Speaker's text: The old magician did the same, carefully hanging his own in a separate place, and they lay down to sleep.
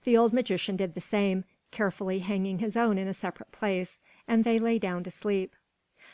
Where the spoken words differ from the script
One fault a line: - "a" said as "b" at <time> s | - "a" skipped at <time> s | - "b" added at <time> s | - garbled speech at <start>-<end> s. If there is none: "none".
none